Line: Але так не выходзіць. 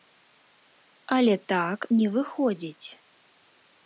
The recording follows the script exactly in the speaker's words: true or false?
true